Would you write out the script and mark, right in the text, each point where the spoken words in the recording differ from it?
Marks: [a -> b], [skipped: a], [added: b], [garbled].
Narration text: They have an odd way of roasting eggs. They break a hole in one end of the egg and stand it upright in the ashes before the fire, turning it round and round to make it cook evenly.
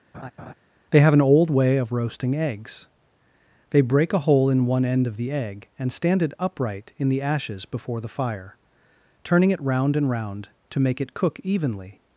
They have an [odd -> old] way of roasting eggs. They break a hole in one end of the egg and stand it upright in the ashes before the fire, turning it round and round to make it cook evenly.